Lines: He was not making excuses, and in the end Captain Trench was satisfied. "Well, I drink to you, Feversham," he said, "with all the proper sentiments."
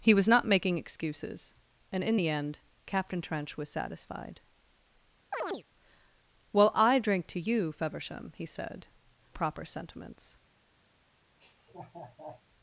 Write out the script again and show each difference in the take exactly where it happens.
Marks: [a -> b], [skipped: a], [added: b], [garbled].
He was not making excuses, and in the end Captain Trench was satisfied. "Well, I drink to you, Feversham," he said, [skipped: "with all the] proper sentiments."